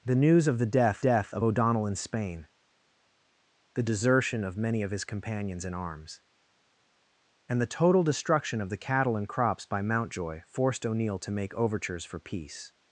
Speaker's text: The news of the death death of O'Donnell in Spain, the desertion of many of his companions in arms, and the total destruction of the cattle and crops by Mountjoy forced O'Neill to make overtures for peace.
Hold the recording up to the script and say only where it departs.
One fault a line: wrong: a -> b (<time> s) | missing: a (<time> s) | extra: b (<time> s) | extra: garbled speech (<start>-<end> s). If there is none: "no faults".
no faults